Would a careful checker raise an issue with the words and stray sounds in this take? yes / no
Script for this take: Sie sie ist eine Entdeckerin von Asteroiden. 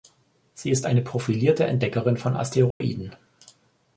yes